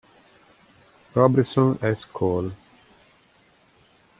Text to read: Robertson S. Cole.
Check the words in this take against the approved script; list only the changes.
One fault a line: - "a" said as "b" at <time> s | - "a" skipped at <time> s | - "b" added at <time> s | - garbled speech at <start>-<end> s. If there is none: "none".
none